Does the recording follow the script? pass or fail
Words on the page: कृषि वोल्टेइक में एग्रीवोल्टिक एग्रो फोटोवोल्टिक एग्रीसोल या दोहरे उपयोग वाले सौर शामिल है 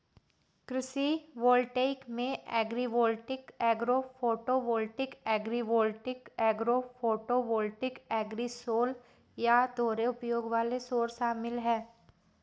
fail